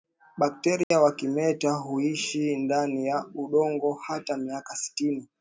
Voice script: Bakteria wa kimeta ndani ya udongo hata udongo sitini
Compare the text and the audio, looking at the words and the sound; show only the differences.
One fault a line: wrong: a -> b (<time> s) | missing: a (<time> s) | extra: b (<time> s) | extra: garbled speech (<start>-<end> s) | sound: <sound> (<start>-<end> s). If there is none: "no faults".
sound: dropout (0.8-0.9 s)
extra: huishi (1.7 s)
wrong: udongo -> miaka (4.4 s)